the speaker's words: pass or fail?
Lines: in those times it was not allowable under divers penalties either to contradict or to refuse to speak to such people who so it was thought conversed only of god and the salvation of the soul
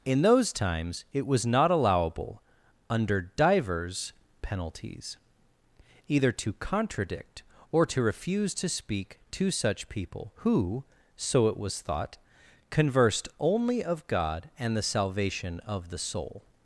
pass